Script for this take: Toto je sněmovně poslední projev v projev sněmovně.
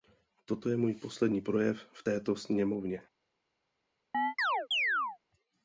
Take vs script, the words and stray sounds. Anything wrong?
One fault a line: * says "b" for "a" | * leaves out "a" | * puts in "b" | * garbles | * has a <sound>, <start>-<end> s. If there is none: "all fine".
* says "můj" for "sněmovně"
* says "této" for "projev"
* has a chirp, 4.1-5.2 s